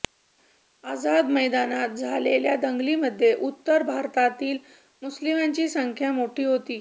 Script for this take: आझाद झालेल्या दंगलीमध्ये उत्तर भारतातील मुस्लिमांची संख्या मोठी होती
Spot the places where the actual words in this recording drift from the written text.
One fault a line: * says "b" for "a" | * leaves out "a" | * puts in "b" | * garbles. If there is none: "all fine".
* puts in "मैदानात"